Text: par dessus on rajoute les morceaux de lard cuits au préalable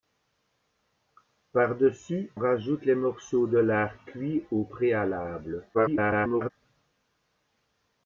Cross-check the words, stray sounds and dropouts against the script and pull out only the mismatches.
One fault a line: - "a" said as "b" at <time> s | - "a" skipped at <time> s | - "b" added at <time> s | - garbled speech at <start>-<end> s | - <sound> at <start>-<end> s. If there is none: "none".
- "on" skipped at 2.3 s
- garbled speech at 5.7-6.5 s